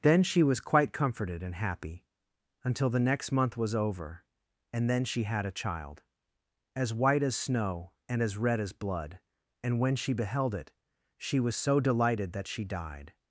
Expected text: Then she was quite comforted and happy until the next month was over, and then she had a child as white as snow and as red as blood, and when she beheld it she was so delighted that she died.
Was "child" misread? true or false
false